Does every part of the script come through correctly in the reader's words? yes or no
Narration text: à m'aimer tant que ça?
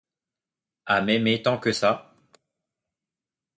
yes